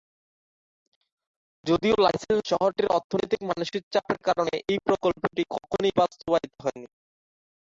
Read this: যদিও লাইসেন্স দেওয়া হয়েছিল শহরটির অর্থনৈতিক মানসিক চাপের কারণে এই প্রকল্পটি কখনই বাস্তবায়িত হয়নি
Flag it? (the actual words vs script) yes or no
yes